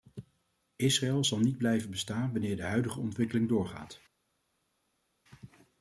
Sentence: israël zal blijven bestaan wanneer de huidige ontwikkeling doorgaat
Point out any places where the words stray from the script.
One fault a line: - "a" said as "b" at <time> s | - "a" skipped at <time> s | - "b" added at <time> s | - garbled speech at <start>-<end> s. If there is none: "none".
- "niet" added at 1.4 s